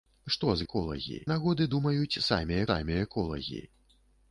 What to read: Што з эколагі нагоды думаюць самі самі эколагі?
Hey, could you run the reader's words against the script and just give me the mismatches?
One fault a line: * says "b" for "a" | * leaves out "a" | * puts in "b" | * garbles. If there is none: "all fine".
all fine